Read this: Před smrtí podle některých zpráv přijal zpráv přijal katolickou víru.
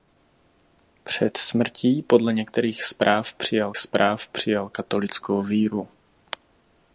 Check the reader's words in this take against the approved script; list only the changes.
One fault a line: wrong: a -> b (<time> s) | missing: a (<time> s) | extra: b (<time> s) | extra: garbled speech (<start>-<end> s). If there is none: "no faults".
no faults